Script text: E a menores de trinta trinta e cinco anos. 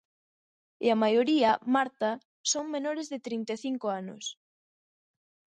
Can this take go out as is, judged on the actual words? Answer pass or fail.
fail